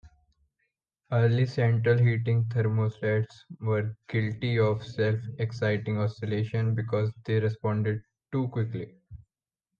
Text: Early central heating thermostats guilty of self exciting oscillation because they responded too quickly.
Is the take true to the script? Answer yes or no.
no